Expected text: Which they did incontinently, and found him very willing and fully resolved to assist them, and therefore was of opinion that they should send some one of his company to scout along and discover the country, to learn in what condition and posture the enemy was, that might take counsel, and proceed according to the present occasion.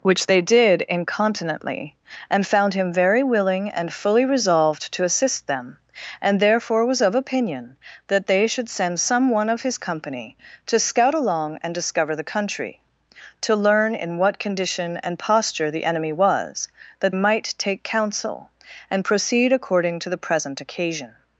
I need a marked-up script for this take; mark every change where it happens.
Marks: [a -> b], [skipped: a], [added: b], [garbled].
Which they did incontinently, and found him very willing and fully resolved to assist them, and therefore was of opinion that they should send some one of his company to scout along and discover the country, to learn in what condition and posture the enemy was, that might take counsel, and proceed according to the present occasion.